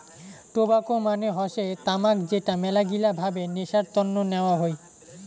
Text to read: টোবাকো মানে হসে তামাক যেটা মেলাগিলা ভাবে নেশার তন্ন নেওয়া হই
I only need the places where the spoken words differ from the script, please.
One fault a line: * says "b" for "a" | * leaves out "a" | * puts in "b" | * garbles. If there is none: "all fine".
all fine